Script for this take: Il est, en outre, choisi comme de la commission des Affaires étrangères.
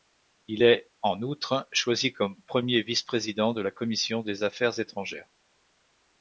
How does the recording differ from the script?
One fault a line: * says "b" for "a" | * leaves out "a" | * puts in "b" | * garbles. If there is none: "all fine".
* puts in "premier vice président"